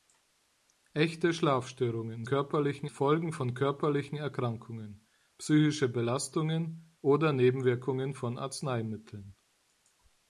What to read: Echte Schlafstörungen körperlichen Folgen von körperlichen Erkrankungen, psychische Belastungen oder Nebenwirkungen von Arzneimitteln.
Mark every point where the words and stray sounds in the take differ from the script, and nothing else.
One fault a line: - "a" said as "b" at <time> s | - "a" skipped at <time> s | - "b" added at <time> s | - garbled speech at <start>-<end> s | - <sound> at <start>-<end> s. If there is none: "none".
none